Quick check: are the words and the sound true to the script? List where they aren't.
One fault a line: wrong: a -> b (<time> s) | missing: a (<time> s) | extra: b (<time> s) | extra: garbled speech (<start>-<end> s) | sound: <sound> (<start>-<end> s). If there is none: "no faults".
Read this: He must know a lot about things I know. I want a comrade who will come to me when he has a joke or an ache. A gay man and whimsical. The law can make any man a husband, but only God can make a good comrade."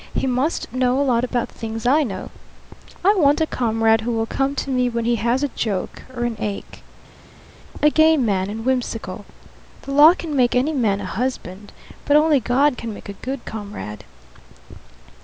no faults